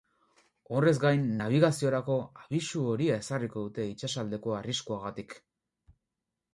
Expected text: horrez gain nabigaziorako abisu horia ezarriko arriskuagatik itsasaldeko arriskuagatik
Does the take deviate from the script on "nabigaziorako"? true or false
false